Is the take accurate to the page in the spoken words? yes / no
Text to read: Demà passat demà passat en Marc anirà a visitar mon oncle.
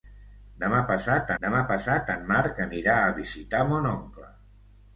yes